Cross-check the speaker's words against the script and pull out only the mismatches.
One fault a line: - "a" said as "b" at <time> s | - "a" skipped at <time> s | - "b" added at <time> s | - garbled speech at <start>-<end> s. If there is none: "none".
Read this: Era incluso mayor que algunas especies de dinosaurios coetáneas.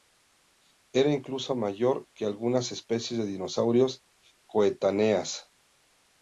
none